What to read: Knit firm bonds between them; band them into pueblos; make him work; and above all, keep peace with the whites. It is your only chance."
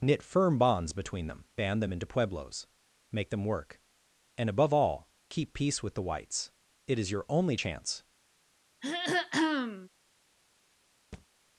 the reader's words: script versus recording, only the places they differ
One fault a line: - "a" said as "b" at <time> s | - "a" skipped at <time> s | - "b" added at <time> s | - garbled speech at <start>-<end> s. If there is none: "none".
- "him" said as "them" at 3.3 s